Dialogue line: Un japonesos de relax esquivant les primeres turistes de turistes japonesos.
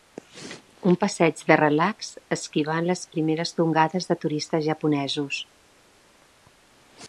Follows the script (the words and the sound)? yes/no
no